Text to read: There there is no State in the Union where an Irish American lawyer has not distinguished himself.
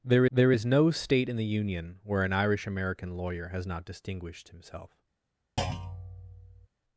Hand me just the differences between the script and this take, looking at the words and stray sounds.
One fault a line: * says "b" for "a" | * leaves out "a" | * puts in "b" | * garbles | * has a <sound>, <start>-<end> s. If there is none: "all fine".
* has a thud, 5.6-6.7 s